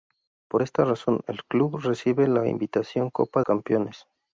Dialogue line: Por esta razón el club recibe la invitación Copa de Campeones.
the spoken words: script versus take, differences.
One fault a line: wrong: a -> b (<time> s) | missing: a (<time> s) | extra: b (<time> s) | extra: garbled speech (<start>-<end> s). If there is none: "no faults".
missing: de (3.4 s)